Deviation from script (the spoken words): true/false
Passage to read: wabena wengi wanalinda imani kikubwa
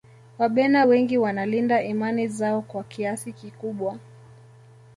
true